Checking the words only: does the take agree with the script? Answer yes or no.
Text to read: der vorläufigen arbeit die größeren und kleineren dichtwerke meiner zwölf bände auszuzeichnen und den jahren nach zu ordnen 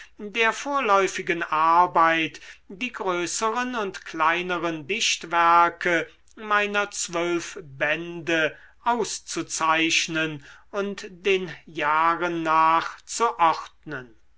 yes